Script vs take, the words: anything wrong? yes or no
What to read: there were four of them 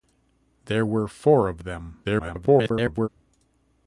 yes